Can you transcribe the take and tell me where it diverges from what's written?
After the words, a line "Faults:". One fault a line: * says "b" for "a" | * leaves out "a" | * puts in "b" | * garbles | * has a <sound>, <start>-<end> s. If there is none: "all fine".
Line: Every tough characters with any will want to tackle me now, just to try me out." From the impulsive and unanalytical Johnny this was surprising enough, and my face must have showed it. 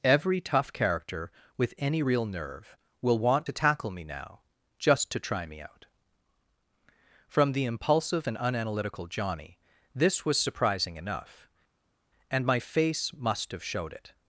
Every tough character with any real nerve will want to tackle me now, just to try me out." From the impulsive and unanalytical Johnny this was surprising enough, and my face must have showed it.
Faults:
* says "character" for "characters"
* puts in "real nerve"